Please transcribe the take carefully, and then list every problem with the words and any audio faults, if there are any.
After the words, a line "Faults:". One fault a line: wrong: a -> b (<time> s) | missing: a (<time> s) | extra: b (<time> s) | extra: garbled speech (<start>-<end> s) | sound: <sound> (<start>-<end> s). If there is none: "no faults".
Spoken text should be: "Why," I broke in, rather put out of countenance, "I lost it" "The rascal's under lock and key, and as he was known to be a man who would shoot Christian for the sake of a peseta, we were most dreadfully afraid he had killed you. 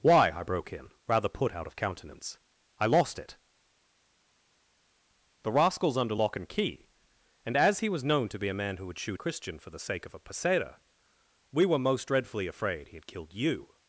"Why," I broke in, rather put out of countenance, "I lost it" "The rascal's under lock and key, and as he was known to be a man who would shoot Christian for the sake of a peseta, we were most dreadfully afraid he had killed you.
Faults:
no faults